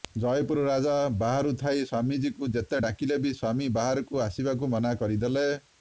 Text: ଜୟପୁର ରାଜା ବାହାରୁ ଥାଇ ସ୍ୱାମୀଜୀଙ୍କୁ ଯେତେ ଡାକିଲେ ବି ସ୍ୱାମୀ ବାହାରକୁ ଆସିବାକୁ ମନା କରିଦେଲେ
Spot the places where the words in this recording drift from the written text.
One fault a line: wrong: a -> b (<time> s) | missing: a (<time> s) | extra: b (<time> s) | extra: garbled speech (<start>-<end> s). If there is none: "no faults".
no faults